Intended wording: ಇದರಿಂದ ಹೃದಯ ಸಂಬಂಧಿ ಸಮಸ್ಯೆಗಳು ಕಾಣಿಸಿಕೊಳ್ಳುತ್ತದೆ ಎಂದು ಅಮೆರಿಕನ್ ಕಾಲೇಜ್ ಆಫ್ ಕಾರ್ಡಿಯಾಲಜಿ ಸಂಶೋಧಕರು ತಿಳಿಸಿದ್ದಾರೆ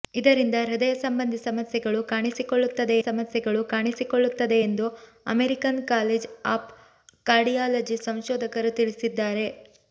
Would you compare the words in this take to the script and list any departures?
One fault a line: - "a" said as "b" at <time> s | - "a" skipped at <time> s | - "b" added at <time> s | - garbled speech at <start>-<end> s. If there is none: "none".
- "ಸಮಸ್ಯೆಗಳು ಕಾಣಿಸಿಕೊಳ್ಳುತ್ತದೆ" added at 3.0 s